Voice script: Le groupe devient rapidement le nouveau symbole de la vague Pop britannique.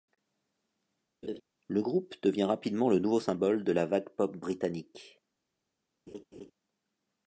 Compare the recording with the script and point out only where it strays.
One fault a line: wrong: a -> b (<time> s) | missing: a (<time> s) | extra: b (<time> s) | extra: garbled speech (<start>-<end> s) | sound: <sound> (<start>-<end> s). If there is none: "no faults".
sound: laugh (1.2-1.4 s)
sound: laugh (6.1-6.5 s)